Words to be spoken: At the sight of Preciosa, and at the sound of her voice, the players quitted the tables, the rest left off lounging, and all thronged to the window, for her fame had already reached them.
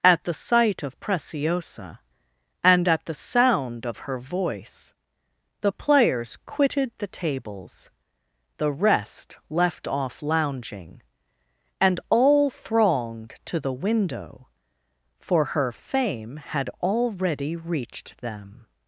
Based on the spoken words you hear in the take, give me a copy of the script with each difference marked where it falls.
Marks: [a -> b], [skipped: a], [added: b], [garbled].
At the sight of Preciosa, and at the sound of her voice, the players quitted the tables, the rest left off lounging, and all thronged to the window, for her fame had already reached them.